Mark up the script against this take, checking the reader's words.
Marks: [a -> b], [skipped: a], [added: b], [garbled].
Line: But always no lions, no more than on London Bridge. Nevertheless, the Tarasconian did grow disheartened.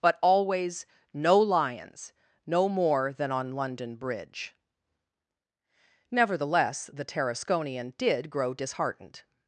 But always no lions, no more than on London Bridge. Nevertheless, the Tarasconian did grow disheartened.